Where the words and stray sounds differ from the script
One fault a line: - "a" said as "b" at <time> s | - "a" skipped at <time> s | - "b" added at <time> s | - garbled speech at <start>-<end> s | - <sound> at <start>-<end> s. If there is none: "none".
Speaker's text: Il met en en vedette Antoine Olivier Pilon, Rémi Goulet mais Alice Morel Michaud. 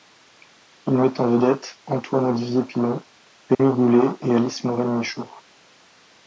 - "en" skipped at 1.4 s
- dropout at 3.5-3.6 s
- "mais" said as "et" at 4.2 s